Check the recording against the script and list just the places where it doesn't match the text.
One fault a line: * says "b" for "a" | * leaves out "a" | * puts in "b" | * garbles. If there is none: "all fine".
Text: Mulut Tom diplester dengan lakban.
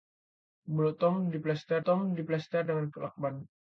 * puts in "Tom diplester"